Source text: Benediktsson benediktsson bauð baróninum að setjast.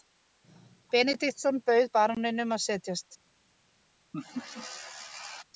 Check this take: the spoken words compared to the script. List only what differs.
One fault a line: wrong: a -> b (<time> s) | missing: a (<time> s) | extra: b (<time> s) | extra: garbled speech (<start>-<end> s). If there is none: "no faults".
missing: benediktsson (1.6 s)